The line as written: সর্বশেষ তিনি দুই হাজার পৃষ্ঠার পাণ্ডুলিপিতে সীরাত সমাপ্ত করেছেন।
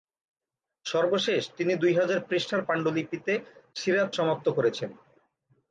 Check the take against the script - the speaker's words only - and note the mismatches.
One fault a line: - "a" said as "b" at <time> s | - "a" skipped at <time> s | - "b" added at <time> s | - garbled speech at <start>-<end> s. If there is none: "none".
none